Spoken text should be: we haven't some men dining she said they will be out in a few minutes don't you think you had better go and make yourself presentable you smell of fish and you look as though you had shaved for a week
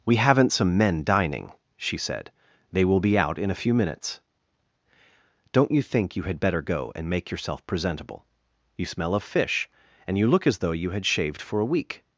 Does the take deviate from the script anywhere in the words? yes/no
no